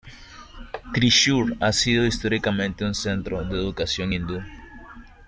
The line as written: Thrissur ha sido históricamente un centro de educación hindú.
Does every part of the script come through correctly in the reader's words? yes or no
yes